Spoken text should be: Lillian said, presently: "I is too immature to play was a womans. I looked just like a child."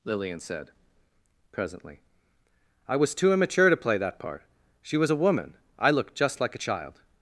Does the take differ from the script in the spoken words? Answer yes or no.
yes